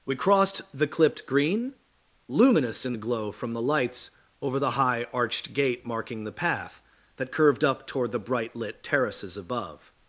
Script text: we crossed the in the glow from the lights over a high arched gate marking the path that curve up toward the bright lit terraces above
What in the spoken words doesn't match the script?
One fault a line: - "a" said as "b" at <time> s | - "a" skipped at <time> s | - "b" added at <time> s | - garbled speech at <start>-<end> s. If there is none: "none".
- "clipped green luminous" added at 0.9 s
- "a" said as "the" at 4.6 s
- "curve" said as "curved" at 7.3 s